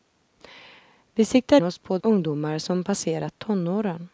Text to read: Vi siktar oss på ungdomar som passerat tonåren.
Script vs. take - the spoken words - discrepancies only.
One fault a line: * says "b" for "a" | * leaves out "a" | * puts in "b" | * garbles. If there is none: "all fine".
all fine